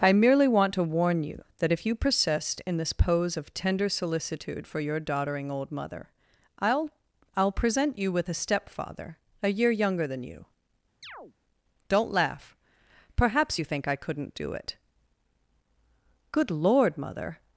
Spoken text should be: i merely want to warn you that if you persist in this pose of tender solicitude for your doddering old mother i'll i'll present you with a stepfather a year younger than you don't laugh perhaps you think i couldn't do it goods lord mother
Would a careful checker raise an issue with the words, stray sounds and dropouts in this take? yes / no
yes